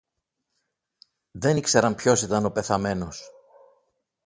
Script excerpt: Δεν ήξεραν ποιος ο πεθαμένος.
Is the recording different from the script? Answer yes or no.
yes